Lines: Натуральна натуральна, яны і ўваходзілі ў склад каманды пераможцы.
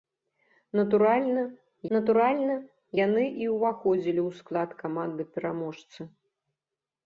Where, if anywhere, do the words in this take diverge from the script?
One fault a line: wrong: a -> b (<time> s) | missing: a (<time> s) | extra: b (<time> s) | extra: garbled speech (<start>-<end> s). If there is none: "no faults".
no faults